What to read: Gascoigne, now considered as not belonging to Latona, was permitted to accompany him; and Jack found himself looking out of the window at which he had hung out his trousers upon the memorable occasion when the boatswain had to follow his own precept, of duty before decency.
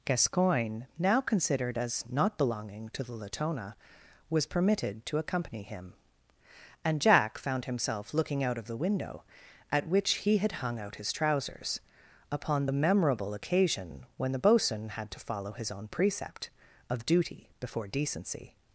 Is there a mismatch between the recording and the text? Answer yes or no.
yes